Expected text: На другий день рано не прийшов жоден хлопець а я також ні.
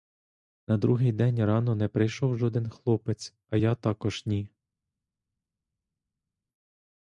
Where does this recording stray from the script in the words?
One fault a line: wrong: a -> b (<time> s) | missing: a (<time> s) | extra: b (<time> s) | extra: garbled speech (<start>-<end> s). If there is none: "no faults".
no faults